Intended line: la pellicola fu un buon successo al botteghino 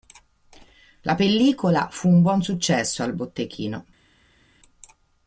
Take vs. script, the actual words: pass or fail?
pass